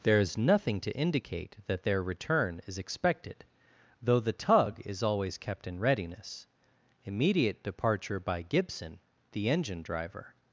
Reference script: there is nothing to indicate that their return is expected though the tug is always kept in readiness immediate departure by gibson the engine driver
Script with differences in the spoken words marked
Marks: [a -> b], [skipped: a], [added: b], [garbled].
there is nothing to indicate that their return is expected though the tug is always kept in readiness immediate departure by gibson the engine driver